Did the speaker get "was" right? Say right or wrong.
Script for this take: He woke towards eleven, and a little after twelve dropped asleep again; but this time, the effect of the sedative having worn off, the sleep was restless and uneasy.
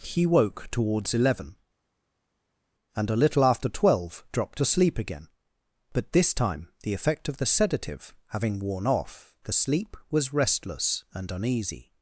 right